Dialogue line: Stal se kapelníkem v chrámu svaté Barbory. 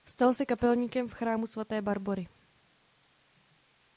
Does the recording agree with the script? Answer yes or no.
yes